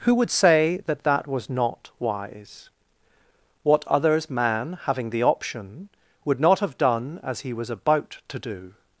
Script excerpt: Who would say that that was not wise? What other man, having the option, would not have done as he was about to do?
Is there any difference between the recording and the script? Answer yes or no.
yes